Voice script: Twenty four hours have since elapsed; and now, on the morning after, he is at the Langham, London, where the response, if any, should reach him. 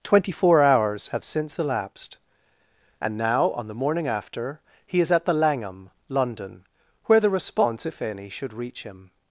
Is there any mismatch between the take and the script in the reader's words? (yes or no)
no